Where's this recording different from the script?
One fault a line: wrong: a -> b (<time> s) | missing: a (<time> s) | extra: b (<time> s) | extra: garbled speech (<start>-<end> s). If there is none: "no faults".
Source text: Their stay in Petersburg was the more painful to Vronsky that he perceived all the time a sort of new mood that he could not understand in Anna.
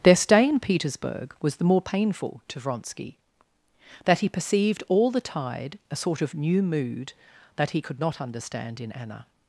wrong: time -> tide (5.2 s)